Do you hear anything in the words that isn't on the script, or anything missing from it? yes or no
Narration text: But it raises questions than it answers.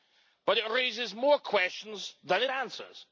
yes